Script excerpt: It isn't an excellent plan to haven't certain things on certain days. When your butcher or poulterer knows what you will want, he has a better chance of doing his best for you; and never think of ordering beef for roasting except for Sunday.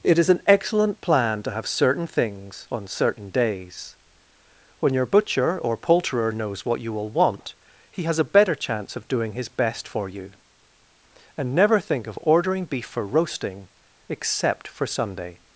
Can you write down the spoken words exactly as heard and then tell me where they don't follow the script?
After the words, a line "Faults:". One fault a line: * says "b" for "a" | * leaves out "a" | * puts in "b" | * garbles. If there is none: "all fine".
It is an excellent plan to have certain things on certain days. When your butcher or poulterer knows what you will want, he has a better chance of doing his best for you; and never think of ordering beef for roasting except for Sunday.
Faults:
* says "is" for "isn't"
* says "have" for "haven't"